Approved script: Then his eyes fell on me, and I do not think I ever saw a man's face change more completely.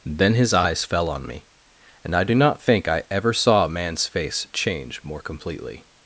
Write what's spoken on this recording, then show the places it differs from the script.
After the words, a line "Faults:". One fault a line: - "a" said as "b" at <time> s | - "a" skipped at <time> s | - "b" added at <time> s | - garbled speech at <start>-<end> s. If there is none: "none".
Then his eyes fell on me, and I do not think I ever saw a man's face change more completely.
Faults:
none